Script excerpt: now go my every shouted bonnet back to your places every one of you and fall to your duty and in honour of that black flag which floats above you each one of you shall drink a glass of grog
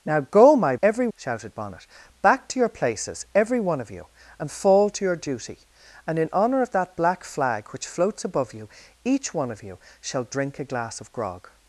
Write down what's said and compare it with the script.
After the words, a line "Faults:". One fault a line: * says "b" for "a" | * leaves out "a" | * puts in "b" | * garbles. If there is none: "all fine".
now go my every shouted bonnet back to your places every one of you and fall to your duty and in honour of that black flag which floats above you each one of you shall drink a glass of grog
Faults:
all fine